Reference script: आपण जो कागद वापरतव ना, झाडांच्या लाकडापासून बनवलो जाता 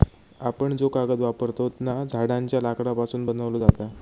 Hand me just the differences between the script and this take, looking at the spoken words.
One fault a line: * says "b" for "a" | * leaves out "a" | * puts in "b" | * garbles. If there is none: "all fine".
all fine